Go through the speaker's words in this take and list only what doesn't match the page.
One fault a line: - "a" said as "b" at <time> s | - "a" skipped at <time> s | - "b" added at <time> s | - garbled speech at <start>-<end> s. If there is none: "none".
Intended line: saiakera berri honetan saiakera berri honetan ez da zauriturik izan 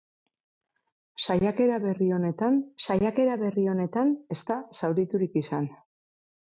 none